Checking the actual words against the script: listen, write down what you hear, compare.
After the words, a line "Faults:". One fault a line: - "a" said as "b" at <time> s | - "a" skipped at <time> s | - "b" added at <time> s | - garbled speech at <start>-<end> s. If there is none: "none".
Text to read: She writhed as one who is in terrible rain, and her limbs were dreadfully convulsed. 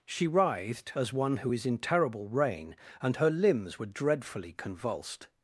She writhed as one who is in terrible rain, and her limbs were dreadfully convulsed.
Faults:
none